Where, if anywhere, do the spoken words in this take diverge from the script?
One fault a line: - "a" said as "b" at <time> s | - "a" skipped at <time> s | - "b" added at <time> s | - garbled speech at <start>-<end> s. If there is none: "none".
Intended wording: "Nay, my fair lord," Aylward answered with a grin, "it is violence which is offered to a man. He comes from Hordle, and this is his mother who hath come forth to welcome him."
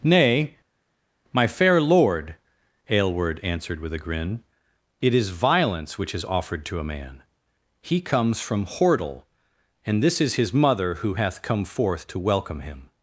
none